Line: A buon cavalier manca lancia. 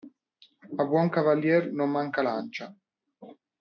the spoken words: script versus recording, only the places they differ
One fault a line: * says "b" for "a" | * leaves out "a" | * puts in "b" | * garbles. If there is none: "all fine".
* puts in "non"